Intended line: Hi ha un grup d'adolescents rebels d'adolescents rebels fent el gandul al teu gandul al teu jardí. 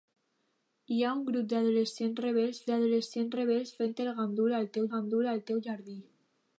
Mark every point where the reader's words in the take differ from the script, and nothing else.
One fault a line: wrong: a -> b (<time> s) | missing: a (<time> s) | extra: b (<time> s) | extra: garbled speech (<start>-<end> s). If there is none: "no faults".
no faults